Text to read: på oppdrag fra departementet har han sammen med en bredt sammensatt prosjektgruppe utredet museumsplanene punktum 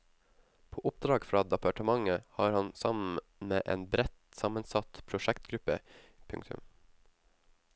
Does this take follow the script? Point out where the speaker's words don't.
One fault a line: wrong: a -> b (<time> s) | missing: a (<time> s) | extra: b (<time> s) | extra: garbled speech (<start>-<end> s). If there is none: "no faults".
missing: utredet museumsplanene (5.8 s)